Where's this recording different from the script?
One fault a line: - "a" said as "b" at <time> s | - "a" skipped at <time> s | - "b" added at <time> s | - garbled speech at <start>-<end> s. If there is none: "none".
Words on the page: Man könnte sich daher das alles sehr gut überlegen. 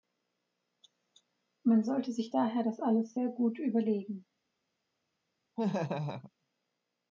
- "könnte" said as "sollte" at 1.8 s